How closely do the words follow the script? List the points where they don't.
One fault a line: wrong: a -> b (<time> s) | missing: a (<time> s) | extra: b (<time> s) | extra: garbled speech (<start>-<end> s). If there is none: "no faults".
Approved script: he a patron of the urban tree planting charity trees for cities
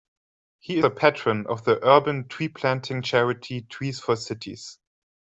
no faults